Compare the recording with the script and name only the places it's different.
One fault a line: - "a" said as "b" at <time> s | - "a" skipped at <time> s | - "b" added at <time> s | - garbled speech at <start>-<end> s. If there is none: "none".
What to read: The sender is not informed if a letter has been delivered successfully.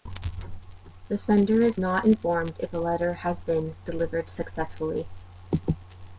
none